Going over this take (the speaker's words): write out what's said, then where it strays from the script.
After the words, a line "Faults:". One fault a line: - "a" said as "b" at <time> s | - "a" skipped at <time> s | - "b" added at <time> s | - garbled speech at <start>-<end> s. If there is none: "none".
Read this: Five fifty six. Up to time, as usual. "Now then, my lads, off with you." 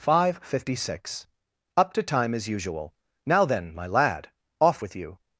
Five fifty six. Up to time, as usual. "Now then, my lad, off with you."
Faults:
- "lads" said as "lad" at 3.9 s